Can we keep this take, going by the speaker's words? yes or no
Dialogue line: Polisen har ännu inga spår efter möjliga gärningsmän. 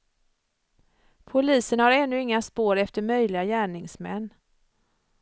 yes